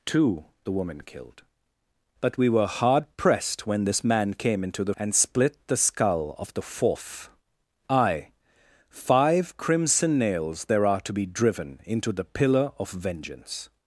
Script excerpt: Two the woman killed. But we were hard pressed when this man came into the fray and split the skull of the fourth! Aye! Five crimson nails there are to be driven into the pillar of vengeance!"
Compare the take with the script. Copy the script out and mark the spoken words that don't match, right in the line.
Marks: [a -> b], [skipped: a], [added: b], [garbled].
Two the woman killed. But we were hard pressed when this man came into the [skipped: fray] and split the skull of the fourth! Aye! Five crimson nails there are to be driven into the pillar of vengeance!"